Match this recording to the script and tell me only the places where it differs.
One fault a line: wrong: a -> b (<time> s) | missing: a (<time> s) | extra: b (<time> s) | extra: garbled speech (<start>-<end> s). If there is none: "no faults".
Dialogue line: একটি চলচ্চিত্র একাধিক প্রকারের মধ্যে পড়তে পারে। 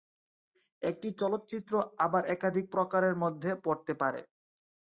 extra: আবার (2.0 s)